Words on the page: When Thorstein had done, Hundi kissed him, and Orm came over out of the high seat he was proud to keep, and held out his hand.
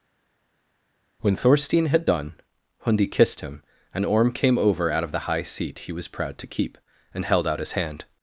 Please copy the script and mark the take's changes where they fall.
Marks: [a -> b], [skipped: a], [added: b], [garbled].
When Thorstein had done, Hundi kissed him, and Orm came over out of the high seat he was proud to keep, and held out his hand.